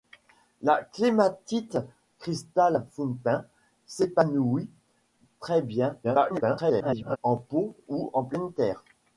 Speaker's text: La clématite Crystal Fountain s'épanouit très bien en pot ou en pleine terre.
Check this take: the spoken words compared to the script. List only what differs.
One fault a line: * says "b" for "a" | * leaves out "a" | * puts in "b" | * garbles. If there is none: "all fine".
* garbles